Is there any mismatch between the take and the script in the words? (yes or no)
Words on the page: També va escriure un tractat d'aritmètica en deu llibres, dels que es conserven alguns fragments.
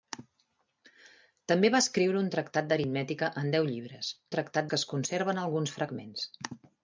yes